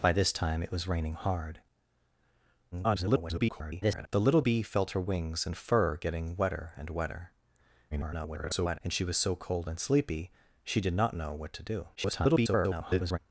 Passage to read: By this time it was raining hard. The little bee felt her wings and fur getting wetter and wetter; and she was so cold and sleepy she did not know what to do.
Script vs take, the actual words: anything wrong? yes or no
yes